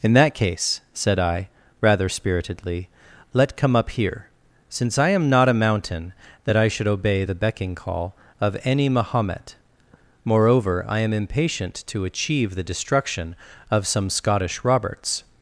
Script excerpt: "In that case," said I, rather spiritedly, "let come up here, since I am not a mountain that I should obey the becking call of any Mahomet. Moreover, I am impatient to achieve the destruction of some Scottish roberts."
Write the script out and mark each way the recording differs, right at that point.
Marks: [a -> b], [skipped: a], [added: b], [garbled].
"In that case," said I, rather spiritedly, "let come up here, since I am not a mountain that I should obey the becking call of any Mahomet. Moreover, I am impatient to achieve the destruction of some Scottish roberts."